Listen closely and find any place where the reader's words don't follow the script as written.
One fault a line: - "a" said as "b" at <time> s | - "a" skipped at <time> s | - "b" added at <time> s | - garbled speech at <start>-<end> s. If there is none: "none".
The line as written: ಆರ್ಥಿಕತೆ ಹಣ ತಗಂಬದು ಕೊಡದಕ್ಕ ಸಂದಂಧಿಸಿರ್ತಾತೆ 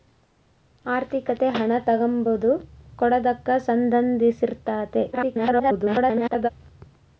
- garbled speech at 5.1-6.5 s